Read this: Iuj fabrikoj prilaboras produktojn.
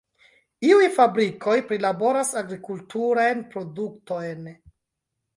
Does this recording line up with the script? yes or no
no